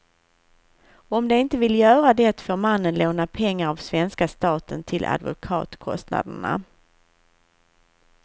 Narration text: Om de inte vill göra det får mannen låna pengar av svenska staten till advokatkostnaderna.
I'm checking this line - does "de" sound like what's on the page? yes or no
yes